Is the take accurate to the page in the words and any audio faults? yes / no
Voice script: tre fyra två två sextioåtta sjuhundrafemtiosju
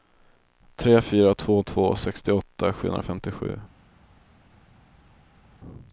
yes